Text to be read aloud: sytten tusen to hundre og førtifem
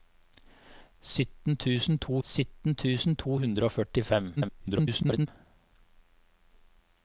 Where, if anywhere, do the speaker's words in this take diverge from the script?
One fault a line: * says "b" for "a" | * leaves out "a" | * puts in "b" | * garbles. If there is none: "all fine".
* puts in "sytten tusen to"
* garbles